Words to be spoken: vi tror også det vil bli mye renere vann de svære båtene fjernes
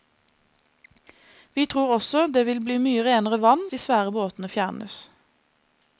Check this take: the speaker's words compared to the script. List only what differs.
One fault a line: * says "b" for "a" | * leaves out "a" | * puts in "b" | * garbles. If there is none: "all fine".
all fine